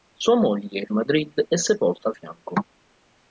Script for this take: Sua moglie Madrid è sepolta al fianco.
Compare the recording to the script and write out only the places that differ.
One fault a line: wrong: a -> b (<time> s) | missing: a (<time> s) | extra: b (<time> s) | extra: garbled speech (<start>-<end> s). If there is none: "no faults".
no faults